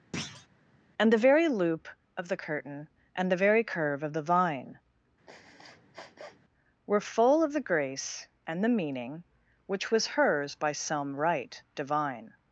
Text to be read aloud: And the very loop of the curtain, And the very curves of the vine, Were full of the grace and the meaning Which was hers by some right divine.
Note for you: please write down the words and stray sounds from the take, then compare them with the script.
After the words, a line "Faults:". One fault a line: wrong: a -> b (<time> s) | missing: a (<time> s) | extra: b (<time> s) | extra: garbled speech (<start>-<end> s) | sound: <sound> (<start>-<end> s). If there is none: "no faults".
And the very loop of the curtain, And the very curve of the vine, Were full of the grace and the meaning Which was hers by some right divine.
Faults:
sound: thud (0.1-0.5 s)
wrong: curves -> curve (3.6 s)
sound: sniff (5.3-6.4 s)